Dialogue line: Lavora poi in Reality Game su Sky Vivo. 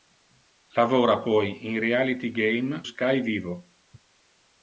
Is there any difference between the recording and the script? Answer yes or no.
yes